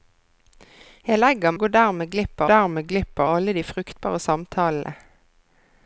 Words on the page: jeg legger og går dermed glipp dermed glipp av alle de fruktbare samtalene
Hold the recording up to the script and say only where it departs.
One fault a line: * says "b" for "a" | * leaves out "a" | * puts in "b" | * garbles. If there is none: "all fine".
all fine